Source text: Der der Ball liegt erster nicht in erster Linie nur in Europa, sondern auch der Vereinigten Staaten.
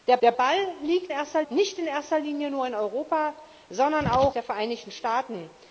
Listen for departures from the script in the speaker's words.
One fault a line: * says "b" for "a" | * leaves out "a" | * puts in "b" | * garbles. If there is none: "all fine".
all fine